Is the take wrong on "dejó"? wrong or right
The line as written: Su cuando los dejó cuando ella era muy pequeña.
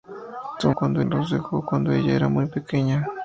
right